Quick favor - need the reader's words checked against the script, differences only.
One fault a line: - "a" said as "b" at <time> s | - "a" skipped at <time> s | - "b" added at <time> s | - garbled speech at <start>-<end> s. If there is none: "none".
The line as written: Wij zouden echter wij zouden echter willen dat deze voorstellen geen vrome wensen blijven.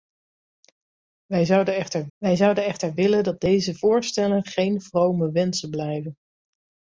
none